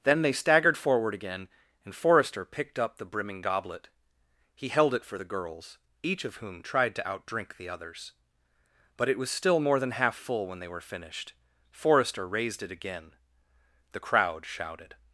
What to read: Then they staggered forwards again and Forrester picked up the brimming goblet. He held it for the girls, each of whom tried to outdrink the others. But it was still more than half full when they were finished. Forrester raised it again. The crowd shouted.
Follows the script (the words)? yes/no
no